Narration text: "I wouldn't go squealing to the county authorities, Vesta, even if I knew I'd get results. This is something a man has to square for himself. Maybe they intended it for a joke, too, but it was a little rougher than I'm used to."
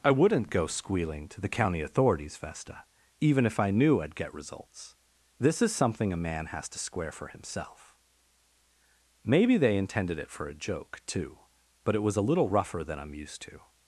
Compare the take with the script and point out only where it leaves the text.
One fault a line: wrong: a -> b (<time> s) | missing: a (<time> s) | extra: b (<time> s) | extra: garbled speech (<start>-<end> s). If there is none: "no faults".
no faults